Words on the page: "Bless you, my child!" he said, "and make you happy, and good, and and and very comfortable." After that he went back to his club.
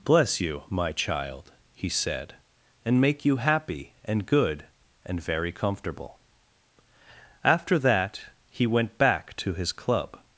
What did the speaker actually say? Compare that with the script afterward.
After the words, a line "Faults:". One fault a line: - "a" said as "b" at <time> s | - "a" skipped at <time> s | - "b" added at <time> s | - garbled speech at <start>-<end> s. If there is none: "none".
"Bless you, my child!" he said, "and make you happy, and good, and very comfortable." After that he went back to his club.
Faults:
- "and and" skipped at 5.2 s